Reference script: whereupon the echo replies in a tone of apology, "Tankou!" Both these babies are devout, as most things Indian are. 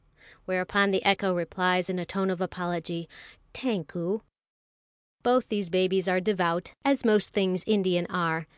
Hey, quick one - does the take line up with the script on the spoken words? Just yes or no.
yes